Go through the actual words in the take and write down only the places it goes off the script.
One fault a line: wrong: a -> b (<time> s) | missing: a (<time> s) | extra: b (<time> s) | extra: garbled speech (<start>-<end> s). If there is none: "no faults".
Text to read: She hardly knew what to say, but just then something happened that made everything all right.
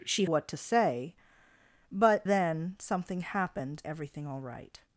missing: hardly knew (0.3 s)
missing: just (2.3 s)
missing: that made (3.8 s)